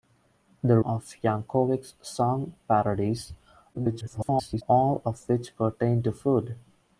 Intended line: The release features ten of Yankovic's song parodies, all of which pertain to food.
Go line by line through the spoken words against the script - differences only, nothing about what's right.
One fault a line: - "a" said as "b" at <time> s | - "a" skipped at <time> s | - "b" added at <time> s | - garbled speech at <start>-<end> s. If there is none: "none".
- "release features ten" skipped at 0.8 s
- garbled speech at 3.7-4.6 s